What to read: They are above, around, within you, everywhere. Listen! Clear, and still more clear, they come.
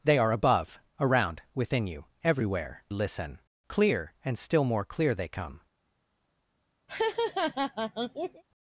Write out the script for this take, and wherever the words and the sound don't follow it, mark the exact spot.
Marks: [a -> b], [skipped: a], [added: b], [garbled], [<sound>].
They are above, around, within you, everywhere. Listen! Clear, and still more clear, they come. [laugh]